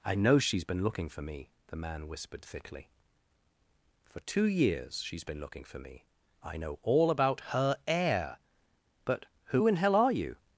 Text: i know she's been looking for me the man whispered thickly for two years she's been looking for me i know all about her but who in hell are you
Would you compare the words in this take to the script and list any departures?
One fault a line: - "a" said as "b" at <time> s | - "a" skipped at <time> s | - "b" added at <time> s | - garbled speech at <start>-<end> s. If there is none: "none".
- "heir" added at 7.9 s